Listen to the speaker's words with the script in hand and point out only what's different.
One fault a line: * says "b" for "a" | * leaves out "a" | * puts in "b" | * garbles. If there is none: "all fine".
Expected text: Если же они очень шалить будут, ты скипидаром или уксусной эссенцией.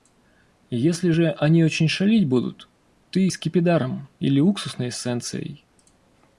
all fine